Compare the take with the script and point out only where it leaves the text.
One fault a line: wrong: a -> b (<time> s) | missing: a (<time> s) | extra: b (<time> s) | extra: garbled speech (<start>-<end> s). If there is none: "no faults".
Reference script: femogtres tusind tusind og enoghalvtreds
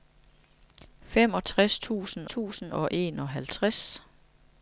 no faults